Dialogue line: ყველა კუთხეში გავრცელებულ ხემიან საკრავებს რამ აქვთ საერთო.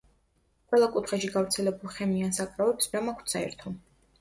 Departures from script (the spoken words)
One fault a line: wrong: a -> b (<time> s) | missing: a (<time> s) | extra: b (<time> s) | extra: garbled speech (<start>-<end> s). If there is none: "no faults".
no faults